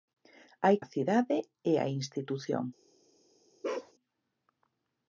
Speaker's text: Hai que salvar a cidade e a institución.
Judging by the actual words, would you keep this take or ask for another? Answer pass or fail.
fail